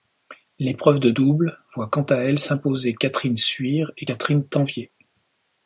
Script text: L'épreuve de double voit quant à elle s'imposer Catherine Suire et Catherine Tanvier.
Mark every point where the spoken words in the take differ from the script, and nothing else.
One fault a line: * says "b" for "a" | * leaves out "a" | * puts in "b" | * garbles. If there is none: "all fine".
all fine